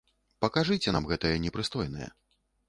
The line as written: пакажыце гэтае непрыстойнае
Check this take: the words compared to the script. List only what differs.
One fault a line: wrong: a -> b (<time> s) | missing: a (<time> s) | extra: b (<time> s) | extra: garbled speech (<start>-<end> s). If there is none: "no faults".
extra: нам (0.9 s)